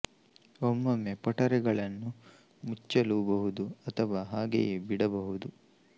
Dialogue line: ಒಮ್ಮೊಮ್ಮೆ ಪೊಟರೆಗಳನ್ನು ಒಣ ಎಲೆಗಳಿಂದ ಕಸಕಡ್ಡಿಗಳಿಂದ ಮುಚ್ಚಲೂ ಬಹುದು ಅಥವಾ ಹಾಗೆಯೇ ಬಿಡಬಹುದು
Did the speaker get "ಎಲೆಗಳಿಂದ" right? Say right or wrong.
wrong